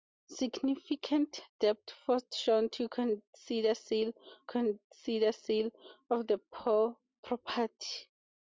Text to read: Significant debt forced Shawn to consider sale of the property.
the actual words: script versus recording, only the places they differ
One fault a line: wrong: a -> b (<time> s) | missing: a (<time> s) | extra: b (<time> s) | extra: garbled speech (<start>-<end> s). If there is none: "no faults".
extra: consider sale (4.5 s)